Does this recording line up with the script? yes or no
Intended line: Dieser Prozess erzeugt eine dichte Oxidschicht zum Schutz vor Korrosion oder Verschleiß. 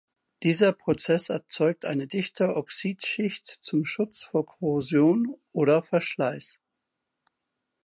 yes